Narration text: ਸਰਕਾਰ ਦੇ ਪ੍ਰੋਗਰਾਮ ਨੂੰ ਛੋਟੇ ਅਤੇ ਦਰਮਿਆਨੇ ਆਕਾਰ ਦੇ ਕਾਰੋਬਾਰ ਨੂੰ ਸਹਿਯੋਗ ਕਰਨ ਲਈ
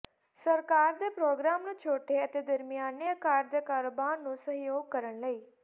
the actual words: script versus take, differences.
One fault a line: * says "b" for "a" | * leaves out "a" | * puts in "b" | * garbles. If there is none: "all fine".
all fine